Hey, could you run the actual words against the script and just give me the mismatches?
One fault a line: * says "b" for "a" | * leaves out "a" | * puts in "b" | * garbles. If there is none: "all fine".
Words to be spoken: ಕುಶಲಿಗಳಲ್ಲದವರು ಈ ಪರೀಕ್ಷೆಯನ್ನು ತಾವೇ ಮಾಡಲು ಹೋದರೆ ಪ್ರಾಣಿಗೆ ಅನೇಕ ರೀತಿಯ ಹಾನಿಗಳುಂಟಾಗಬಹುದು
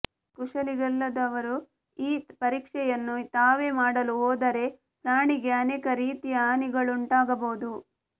all fine